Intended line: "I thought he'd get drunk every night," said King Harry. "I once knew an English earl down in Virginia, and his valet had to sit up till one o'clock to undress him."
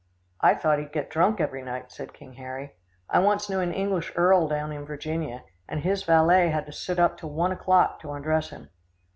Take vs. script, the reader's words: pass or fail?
pass